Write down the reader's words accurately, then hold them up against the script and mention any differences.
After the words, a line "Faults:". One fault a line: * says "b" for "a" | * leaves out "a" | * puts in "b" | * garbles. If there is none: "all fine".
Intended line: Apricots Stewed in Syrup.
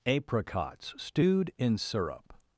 Apricots Stewed in Syrup.
Faults:
all fine